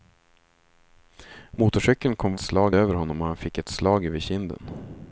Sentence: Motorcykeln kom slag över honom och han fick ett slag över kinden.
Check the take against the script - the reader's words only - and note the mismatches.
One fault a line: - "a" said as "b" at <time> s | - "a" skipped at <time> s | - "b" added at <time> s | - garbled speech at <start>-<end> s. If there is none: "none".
none